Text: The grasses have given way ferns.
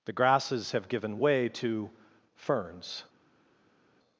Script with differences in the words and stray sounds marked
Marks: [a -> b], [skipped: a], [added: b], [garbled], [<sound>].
The grasses have given way [added: to] ferns.